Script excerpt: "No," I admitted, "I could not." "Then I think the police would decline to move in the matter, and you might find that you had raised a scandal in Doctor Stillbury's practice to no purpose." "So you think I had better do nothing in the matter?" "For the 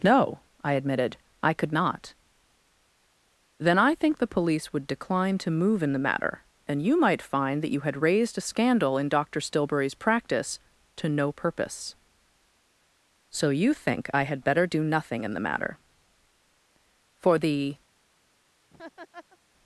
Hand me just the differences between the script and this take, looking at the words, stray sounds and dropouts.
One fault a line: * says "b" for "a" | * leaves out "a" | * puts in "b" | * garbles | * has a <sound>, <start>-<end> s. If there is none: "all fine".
* has a laugh, 18.7-19.4 s